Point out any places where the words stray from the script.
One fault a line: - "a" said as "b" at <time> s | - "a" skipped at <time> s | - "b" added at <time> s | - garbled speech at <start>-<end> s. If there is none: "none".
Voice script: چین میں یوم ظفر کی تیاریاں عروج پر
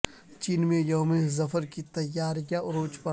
none